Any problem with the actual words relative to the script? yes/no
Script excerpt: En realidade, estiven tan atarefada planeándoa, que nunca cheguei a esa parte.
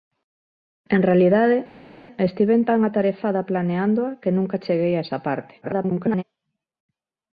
yes